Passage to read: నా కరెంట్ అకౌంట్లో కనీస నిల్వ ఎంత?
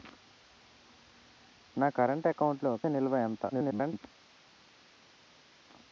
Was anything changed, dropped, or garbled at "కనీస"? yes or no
yes